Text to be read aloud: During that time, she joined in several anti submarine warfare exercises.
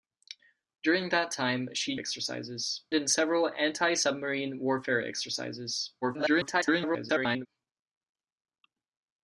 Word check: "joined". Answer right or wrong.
wrong